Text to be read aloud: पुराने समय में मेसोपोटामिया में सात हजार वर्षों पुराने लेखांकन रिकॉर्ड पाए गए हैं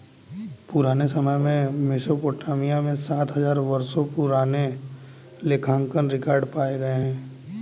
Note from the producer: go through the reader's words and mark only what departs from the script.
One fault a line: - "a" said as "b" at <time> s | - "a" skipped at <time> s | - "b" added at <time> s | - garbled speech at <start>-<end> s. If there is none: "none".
none